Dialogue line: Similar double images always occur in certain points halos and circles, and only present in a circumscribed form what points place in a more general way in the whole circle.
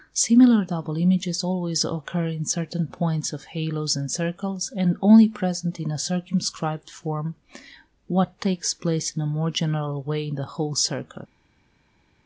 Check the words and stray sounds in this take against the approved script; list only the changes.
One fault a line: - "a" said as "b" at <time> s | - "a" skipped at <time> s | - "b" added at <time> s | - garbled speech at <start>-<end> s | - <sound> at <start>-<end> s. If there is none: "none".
- "of" added at 3.3 s
- "points" said as "takes" at 8.4 s